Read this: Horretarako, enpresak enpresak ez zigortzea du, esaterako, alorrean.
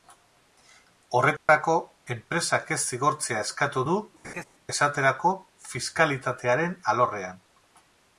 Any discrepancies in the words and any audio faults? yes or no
yes